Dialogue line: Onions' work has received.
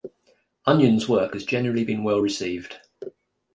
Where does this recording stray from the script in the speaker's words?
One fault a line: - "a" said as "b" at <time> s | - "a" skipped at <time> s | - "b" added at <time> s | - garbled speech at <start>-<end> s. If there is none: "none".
- "generally been well" added at 1.4 s